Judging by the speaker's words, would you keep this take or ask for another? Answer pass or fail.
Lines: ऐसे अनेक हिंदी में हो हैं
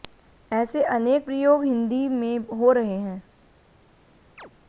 fail